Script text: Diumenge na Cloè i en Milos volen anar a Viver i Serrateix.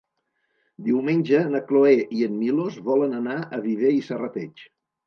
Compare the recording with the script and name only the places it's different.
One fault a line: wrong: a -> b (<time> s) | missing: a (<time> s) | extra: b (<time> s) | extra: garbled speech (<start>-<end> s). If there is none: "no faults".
no faults